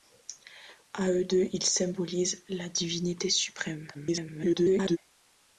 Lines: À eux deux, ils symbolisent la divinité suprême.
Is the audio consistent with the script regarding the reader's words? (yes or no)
no